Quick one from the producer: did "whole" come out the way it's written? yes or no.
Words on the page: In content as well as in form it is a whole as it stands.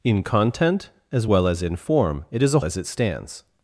no